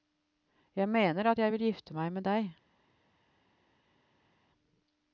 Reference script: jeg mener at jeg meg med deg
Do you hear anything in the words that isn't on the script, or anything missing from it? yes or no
yes